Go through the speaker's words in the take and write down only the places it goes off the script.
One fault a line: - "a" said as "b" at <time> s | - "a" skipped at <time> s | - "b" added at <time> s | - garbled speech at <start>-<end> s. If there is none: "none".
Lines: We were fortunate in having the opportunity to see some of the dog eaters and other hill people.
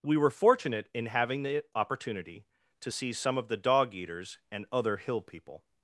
none